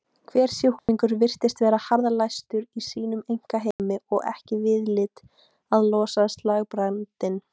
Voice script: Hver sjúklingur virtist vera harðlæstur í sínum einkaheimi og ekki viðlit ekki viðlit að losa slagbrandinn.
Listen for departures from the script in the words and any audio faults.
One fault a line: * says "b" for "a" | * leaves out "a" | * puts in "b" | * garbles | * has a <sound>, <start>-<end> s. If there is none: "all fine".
* has a dropout, 0.8-0.9 s
* has a dropout, 3.7-3.8 s
* leaves out "ekki viðlit"